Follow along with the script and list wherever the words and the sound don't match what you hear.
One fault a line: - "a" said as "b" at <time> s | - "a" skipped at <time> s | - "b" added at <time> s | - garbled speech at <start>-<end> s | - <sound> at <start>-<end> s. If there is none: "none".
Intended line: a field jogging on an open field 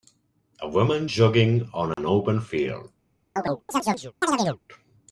- "field" said as "woman" at 0.7 s
- dropout at 1.9-2.0 s
- chirp at 3.4-4.6 s